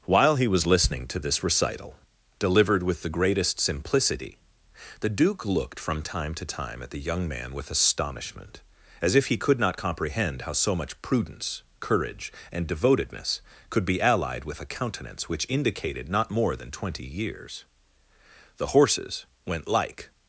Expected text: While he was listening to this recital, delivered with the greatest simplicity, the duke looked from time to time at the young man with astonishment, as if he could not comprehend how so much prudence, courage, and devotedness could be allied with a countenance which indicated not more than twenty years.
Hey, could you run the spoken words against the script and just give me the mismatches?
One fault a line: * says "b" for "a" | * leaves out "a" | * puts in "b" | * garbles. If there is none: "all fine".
* puts in "The horses went like"